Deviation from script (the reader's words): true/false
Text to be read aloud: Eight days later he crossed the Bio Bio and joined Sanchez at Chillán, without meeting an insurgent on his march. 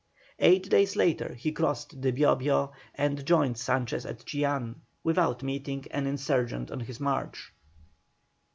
false